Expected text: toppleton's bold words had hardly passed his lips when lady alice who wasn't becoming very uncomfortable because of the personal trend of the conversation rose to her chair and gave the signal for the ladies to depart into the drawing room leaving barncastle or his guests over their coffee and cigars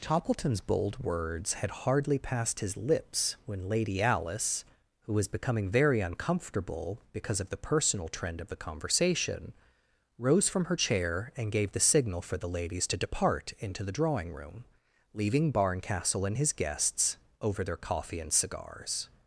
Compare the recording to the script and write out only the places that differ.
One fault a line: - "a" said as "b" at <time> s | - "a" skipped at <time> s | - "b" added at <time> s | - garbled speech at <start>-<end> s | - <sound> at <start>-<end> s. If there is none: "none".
- "wasn't" said as "was" at 5.1 s
- "to" said as "from" at 10.5 s
- "or" said as "and" at 16.2 s